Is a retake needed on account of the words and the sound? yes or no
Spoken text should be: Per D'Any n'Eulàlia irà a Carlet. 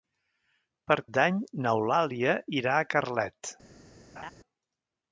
yes